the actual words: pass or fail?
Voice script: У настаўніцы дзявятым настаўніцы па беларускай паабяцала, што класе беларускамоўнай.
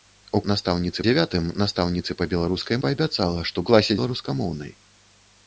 pass